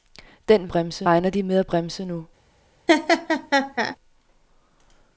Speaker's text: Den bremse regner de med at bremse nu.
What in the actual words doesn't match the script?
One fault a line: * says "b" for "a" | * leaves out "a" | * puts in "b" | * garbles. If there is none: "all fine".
all fine